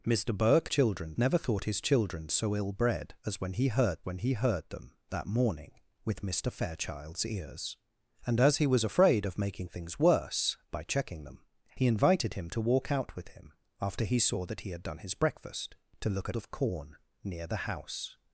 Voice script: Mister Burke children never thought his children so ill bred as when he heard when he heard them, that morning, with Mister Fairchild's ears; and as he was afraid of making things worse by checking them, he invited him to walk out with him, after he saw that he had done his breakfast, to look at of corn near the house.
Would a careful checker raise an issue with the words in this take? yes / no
no